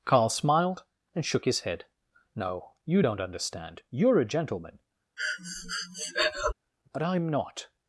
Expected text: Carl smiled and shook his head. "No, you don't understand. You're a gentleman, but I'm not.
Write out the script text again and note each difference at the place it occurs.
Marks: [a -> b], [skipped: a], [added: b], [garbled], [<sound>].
Carl smiled and shook his head. "No, you don't understand. You're a gentleman, [breath] but I'm not.